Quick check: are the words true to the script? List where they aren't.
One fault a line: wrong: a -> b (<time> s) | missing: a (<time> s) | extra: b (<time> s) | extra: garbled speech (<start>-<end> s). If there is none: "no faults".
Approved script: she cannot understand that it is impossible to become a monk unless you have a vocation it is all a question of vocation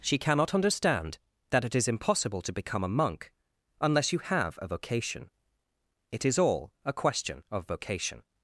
no faults